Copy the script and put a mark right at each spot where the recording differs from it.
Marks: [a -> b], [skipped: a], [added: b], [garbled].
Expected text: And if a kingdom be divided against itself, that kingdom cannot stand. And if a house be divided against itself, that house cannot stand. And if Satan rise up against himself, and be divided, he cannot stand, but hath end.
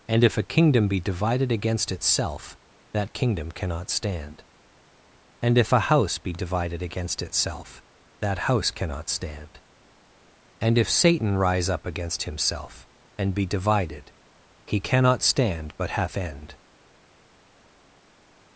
And if a kingdom be divided against itself, that kingdom cannot stand. And if a house be divided against itself, that house cannot stand. And if Satan rise up against himself, and be divided, he cannot stand, but hath end.